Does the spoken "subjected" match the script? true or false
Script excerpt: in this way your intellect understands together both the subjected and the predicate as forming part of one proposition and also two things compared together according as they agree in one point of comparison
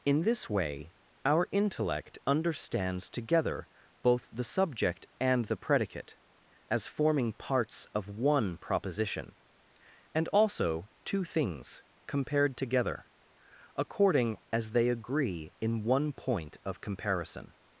false